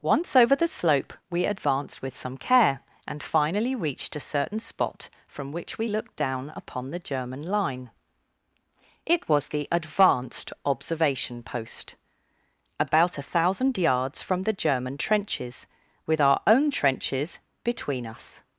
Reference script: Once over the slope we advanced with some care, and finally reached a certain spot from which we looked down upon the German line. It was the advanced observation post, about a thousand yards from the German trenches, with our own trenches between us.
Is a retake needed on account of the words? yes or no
no